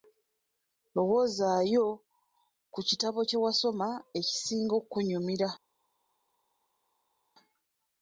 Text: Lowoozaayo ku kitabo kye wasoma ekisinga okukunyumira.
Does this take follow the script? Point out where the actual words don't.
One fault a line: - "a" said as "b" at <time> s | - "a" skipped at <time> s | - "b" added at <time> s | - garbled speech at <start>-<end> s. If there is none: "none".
none